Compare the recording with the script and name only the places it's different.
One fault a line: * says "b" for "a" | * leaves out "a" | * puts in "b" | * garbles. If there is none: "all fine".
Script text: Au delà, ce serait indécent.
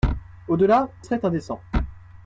* leaves out "ce"